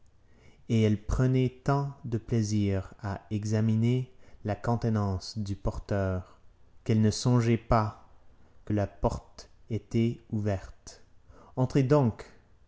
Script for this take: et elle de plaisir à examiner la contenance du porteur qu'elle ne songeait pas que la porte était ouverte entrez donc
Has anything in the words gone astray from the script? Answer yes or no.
yes